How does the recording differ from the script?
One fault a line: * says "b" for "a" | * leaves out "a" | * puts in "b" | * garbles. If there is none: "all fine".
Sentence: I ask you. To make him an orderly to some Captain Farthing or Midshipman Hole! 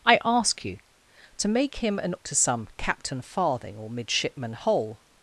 * leaves out "orderly"